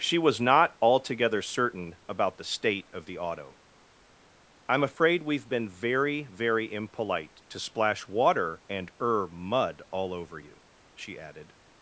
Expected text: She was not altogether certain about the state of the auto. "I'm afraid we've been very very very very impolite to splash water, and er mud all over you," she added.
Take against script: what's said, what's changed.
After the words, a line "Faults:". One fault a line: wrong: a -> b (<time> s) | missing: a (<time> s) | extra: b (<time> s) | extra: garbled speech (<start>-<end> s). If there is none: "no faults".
She was not altogether certain about the state of the auto. "I'm afraid we've been very very impolite to splash water, and er mud all over you," she added.
Faults:
missing: very very (6.7 s)